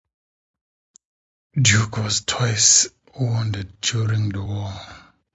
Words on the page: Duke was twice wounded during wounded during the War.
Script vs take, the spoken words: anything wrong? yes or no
yes